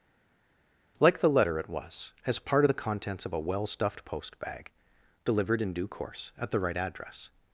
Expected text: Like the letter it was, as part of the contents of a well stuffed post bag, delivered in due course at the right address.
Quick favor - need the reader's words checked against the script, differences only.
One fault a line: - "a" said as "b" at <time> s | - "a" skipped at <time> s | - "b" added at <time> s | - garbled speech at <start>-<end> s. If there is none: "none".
none